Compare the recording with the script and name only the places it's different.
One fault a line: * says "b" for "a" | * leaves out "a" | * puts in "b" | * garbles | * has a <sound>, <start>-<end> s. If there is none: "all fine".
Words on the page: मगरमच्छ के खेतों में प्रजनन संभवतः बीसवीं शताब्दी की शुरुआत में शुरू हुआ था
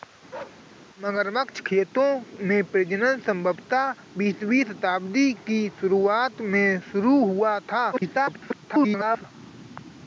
* has a bark, 0.3-0.6 s
* leaves out "के"
* garbles